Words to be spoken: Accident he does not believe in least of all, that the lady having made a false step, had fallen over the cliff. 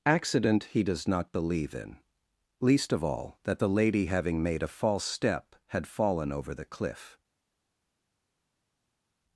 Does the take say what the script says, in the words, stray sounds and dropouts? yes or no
yes